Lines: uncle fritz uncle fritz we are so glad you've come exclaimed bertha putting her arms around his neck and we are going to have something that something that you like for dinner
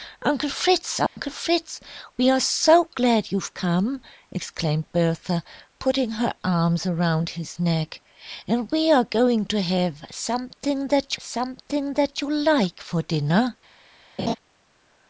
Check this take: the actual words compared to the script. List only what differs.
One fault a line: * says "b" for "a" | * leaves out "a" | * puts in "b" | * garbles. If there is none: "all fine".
all fine